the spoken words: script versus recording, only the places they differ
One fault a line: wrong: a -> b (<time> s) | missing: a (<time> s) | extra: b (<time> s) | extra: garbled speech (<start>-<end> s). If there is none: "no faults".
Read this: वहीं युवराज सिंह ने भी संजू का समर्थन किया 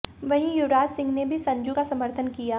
no faults